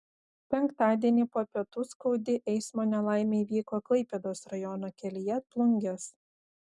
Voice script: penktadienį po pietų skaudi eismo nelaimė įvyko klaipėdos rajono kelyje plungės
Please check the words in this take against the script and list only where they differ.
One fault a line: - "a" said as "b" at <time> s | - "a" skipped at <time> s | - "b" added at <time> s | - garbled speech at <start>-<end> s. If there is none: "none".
none